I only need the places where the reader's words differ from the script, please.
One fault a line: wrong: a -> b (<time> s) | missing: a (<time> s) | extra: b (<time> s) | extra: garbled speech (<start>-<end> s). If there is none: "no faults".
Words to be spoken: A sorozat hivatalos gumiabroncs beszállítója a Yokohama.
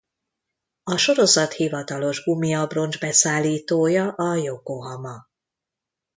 no faults